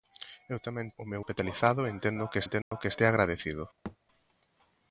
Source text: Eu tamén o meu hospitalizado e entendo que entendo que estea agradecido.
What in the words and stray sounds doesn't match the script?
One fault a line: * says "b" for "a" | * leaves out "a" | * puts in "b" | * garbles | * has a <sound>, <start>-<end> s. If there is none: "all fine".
* has a dropout, 2.6-2.7 s
* has a thud, 3.8-4.0 s